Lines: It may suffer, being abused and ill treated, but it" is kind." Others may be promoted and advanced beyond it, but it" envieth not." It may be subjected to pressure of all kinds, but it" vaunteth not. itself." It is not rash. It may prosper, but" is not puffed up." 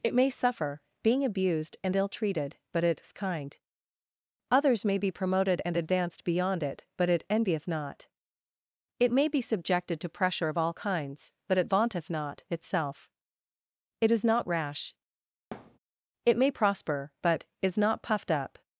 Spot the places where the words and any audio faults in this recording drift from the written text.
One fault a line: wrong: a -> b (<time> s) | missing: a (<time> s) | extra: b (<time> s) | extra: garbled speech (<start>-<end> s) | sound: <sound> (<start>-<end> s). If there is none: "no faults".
sound: thud (15.5-15.8 s)